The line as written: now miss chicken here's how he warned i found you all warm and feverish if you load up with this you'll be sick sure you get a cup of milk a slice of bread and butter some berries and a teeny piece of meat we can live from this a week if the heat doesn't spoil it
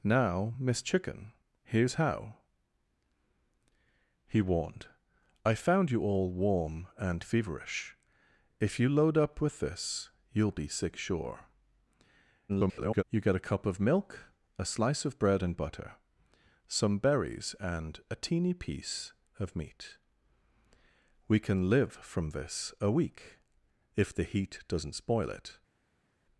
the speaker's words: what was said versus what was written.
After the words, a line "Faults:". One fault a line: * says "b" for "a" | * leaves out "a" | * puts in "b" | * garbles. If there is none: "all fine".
now miss chicken here's how he warned i found you all warm and feverish if you load up with this you'll be sick sure [garbled] you get a cup of milk a slice of bread and butter some berries and a teeny piece of meat we can live from this a week if the heat doesn't spoil it
Faults:
* garbles